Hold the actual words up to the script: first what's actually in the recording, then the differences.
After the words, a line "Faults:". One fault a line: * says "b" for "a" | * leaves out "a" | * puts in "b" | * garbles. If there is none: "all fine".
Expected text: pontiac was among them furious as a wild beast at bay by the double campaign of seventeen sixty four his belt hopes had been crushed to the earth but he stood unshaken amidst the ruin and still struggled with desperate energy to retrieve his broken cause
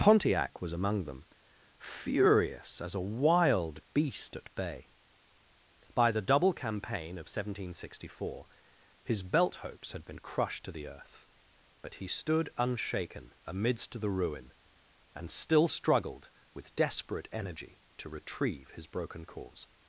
pontiac was among them furious as a wild beast at bay by the double campaign of seventeen sixty four his belt hopes had been crushed to the earth but he stood unshaken amidst the ruin and still struggled with desperate energy to retrieve his broken cause
Faults:
all fine